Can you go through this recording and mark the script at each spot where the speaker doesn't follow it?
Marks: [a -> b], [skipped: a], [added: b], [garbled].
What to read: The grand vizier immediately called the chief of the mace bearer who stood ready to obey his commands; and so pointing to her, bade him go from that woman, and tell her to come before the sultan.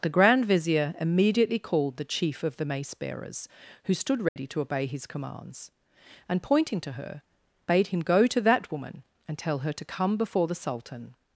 The grand vizier immediately called the chief of the mace [bearer -> bearers] who stood ready to obey his commands; and [skipped: so] pointing to her, bade him go [from -> to] that woman, and tell her to come before the sultan.